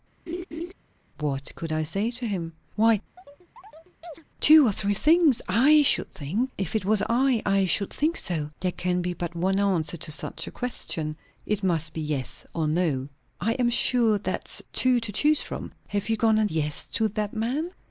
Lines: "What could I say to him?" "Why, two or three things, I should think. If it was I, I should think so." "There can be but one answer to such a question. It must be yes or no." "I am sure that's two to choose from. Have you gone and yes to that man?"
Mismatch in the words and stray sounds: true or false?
true